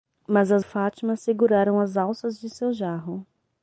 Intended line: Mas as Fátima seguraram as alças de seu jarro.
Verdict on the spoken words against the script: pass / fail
pass